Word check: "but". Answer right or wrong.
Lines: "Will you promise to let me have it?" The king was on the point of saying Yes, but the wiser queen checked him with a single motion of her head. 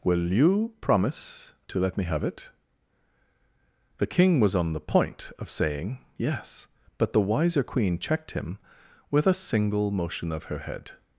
right